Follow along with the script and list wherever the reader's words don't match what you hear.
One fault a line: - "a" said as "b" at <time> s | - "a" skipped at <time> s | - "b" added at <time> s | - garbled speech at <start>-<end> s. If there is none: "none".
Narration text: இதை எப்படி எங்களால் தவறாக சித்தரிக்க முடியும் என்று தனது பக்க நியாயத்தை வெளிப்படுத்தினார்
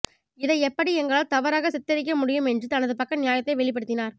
none